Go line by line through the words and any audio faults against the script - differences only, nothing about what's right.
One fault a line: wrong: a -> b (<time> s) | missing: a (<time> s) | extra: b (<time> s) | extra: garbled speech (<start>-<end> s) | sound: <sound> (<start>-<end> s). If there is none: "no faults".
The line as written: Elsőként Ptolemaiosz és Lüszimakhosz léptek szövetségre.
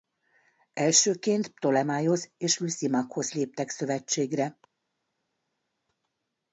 no faults